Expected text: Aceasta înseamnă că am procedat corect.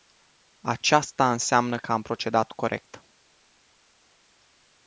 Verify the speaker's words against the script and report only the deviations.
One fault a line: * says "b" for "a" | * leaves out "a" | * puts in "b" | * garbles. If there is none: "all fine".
all fine